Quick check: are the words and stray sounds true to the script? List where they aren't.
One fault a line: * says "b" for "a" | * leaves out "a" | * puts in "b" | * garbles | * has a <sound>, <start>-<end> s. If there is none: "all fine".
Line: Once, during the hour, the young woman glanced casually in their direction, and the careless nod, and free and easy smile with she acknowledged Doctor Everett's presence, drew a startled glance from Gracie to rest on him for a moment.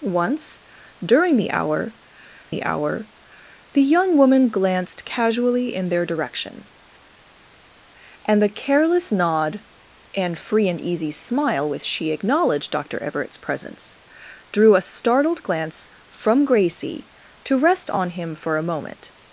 * puts in "hour the"